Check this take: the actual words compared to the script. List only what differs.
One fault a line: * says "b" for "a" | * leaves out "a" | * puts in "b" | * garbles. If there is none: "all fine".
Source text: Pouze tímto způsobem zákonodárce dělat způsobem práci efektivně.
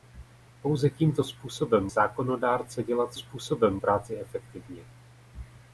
all fine